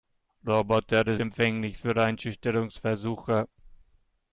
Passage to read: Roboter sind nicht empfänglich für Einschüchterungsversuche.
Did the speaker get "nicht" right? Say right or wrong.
wrong